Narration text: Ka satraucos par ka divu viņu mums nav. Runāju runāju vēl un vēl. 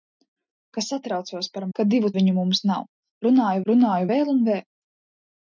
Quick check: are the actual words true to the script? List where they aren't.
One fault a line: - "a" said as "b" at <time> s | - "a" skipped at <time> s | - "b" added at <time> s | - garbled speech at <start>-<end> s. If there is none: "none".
none